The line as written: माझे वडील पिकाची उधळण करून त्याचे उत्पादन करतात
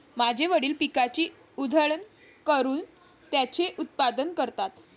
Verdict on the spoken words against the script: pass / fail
pass